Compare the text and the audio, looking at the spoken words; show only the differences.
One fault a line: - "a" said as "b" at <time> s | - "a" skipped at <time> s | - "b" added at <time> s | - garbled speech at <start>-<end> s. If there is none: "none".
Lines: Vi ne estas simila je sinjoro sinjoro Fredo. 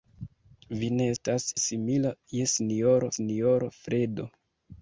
none